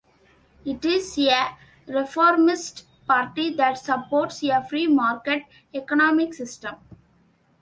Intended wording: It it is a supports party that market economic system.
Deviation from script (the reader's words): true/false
true